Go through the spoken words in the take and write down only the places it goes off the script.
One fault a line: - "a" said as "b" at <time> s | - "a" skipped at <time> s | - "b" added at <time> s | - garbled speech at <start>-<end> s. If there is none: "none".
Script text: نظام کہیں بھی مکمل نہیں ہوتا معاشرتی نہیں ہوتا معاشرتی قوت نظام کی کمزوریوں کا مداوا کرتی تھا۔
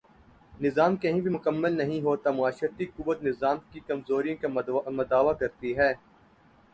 - "نہیں ہوتا معاشرتی" skipped at 2.9 s
- "تھا" said as "ہے" at 5.8 s